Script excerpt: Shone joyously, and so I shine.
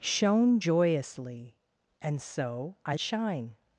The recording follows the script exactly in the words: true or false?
true